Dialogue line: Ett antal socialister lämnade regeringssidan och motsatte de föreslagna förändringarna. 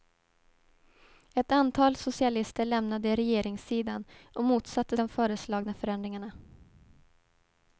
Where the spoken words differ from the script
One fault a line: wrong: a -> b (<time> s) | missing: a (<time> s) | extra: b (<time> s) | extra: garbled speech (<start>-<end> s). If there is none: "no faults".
no faults